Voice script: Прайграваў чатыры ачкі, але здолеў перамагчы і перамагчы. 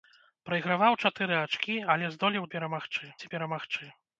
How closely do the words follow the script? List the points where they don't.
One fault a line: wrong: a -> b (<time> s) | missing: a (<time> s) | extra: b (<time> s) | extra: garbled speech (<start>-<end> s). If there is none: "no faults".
no faults